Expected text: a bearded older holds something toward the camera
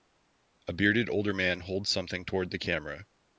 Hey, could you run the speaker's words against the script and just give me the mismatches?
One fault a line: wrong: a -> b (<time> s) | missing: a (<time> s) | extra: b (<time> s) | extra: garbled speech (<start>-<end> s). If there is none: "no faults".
extra: man (1.3 s)